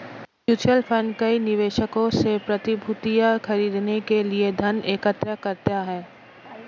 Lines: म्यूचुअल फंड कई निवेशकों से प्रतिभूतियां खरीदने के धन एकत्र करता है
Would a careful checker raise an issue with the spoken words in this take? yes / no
yes